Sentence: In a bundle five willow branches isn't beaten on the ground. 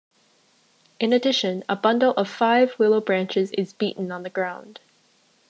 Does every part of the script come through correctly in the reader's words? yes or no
no